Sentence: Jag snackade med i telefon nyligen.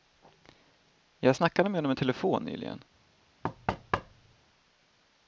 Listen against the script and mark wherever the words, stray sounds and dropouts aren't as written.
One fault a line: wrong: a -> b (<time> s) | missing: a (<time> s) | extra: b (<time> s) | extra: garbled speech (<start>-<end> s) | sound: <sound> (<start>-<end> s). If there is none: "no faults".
extra: honom (1.8 s)
sound: thud (3.4-4.4 s)